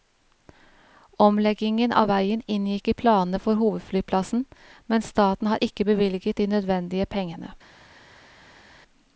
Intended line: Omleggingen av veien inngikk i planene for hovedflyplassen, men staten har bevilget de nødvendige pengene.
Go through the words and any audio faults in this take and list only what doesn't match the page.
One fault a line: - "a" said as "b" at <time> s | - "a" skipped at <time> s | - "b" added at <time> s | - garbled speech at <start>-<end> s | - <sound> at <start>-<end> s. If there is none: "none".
- "ikke" added at 5.7 s